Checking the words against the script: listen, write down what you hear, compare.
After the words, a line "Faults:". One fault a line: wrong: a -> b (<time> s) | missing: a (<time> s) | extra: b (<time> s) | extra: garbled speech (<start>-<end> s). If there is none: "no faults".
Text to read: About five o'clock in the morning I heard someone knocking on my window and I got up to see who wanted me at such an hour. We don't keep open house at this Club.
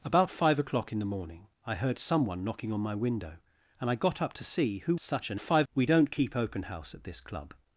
About five o'clock in the morning I heard someone knocking on my window and I got up to see who such an five. We don't keep open house at this Club.
Faults:
missing: wanted me at (5.0 s)
wrong: hour -> five (5.4 s)